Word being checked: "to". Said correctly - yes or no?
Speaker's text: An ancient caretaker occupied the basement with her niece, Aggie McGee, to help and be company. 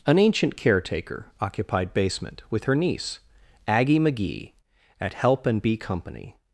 no